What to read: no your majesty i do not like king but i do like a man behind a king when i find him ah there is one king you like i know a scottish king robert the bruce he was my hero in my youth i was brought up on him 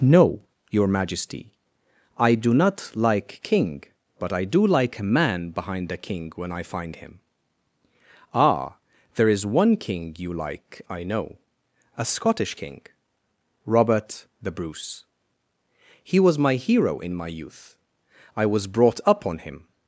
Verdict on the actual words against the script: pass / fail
pass